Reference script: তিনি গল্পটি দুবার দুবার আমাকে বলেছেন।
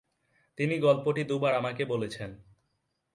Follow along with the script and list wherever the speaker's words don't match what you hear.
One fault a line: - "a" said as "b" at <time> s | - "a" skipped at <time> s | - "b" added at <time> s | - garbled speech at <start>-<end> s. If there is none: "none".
- "দুবার" skipped at 1.5 s